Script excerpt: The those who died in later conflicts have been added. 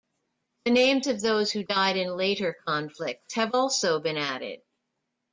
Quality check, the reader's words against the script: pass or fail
fail